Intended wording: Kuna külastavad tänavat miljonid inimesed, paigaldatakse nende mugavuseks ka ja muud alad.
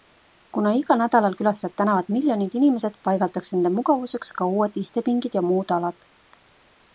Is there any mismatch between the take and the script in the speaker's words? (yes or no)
yes